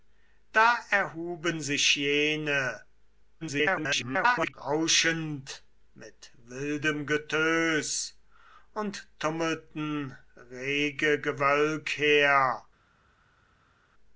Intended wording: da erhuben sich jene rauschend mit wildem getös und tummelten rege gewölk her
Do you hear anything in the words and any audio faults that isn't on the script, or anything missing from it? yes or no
yes